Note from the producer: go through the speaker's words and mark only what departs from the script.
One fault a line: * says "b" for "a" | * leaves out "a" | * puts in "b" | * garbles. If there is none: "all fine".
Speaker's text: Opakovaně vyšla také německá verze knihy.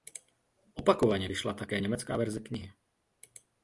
all fine